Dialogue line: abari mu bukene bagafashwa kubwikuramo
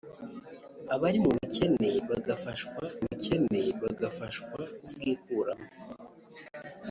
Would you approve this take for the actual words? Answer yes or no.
no